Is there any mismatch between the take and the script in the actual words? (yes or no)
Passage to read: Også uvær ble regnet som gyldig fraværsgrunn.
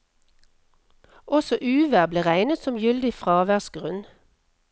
no